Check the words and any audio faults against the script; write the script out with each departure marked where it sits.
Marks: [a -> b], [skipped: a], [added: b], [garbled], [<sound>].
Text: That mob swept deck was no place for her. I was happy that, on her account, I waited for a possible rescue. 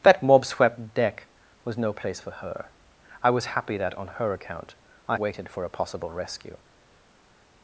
That mob swept deck was no place for her. I was happy that, on her account, I waited for a possible rescue.